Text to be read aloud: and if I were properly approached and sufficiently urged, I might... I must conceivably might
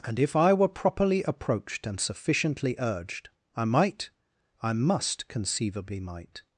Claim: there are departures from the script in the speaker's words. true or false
false